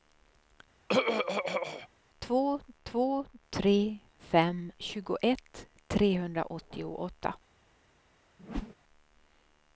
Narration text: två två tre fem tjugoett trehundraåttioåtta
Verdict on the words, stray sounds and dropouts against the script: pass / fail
fail